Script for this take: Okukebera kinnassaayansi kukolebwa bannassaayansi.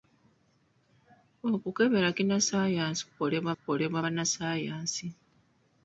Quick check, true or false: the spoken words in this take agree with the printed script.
false